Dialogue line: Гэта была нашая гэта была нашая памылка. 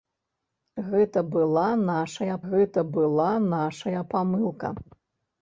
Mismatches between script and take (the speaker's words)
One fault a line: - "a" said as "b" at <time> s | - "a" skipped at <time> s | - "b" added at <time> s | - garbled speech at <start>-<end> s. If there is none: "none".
none